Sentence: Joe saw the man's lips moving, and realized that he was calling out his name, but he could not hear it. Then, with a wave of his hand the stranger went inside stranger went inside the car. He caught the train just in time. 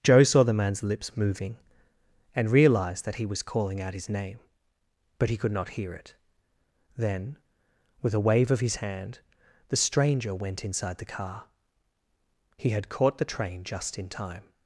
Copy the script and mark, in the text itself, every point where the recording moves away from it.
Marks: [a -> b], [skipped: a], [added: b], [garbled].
Joe saw the man's lips moving, and realized that he was calling out his name, but he could not hear it. Then, with a wave of his hand the stranger went inside [skipped: stranger went inside] the car. He [added: had] caught the train just in time.